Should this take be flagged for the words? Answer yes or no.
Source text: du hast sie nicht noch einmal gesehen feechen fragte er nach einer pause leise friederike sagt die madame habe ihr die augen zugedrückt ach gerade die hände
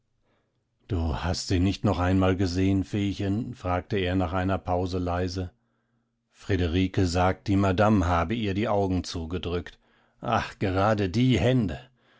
no